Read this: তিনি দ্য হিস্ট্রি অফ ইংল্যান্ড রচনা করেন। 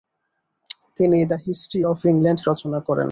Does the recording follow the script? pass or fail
pass